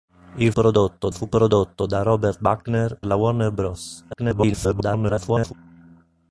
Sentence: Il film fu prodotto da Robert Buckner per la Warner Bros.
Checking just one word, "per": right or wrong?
wrong